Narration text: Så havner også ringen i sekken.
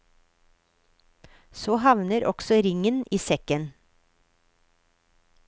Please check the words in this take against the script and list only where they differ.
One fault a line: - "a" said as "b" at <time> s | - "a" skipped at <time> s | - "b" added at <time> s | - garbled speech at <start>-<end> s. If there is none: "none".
none